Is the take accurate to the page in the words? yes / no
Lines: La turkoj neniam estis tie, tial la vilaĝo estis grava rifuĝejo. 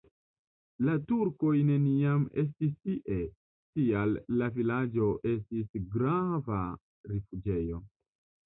yes